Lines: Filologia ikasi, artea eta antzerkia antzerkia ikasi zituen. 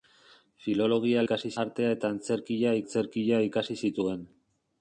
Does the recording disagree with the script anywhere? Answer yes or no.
no